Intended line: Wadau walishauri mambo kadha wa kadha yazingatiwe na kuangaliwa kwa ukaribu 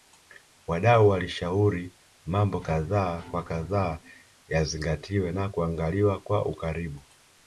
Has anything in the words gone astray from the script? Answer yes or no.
no